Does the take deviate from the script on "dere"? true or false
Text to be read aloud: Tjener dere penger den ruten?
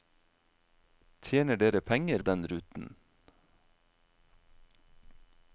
false